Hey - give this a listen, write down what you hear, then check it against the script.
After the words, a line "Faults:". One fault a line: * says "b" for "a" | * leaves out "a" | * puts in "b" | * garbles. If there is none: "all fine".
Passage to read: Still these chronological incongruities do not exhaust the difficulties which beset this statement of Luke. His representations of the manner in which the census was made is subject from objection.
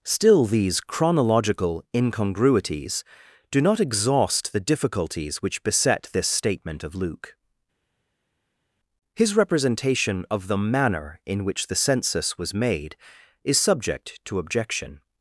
Still these chronological incongruities do not exhaust the difficulties which beset this statement of Luke. His representation of the manner in which the census was made is subject to objection.
Faults:
* says "representation" for "representations"
* says "to" for "from"